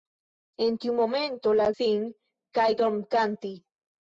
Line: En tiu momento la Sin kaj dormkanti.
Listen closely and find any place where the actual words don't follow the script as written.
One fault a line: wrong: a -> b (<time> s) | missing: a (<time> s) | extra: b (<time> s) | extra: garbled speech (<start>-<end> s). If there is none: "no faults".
no faults